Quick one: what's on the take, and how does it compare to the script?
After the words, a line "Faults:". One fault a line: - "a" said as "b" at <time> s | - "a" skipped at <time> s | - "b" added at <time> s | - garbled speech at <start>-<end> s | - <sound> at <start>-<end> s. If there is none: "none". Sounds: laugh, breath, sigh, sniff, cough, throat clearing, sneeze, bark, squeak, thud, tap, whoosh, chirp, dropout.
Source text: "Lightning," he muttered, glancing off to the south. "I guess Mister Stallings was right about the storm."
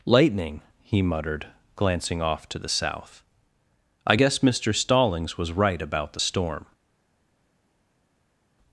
"Lightning," he muttered, glancing off to the south. "I guess Mister Stallings was right about the storm."
Faults:
none